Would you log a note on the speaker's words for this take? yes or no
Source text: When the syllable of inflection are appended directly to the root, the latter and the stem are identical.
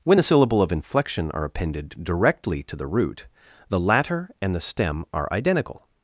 no